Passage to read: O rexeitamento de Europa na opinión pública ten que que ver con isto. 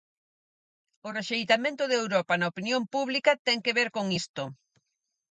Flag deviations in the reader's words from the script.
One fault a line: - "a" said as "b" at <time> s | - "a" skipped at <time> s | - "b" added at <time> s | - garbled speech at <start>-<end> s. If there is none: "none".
- "que" skipped at 3.8 s